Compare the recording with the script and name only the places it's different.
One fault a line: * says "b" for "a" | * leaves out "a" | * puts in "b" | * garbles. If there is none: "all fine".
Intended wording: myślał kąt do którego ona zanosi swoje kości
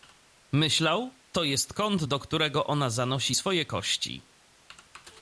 * puts in "to jest"